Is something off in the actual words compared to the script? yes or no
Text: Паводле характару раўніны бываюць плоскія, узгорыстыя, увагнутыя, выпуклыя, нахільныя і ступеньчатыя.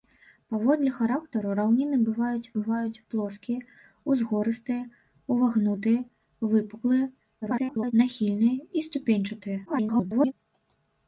yes